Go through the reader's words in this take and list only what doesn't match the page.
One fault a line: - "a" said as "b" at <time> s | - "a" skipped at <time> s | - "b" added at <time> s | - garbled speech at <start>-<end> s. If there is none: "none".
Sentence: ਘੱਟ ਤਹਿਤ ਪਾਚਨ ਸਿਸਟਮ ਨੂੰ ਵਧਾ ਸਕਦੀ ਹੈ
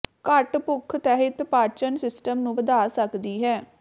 - "ਭੁੱਖ" added at 0.6 s